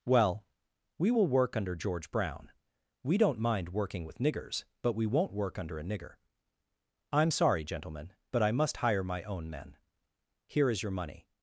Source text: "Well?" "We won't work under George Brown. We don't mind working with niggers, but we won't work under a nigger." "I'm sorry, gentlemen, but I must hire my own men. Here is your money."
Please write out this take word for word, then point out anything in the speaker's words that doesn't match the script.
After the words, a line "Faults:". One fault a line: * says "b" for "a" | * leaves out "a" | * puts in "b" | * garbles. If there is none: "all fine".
"Well?" "We will work under George Brown. We don't mind working with niggers, but we won't work under a nigger." "I'm sorry, gentlemen, but I must hire my own men. Here is your money."
Faults:
* says "will" for "won't"